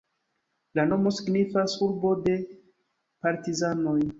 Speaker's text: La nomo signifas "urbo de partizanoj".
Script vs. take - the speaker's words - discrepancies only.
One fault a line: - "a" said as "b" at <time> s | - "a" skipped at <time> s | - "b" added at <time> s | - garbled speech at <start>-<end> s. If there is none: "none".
none